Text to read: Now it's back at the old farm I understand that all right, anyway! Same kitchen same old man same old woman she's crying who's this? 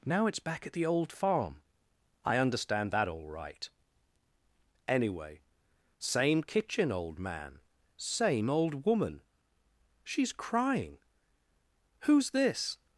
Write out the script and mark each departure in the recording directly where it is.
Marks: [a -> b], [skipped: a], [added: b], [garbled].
Now it's back at the old farm I understand that all right, anyway! Same kitchen [skipped: same] old man same old woman she's crying who's this?